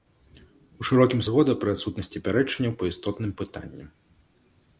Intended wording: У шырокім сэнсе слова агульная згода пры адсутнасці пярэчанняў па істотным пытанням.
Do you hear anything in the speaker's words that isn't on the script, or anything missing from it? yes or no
yes